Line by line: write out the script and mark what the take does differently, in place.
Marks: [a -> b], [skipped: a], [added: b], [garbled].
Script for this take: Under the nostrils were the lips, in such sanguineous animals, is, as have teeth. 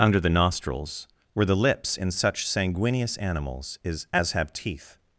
Under the nostrils were the lips, in such sanguineous animals, is, as have teeth.